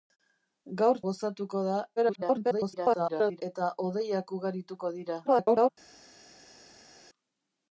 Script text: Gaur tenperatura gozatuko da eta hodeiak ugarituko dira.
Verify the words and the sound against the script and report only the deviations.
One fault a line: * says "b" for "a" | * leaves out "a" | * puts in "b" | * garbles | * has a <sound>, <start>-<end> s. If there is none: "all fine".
* leaves out "tenperatura"
* garbles
* garbles